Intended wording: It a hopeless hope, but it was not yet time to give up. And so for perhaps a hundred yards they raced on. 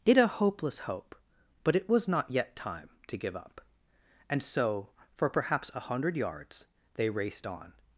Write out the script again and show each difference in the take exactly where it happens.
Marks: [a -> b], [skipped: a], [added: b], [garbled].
It a hopeless hope, but it was not yet time to give up. And so for perhaps a hundred yards they raced on.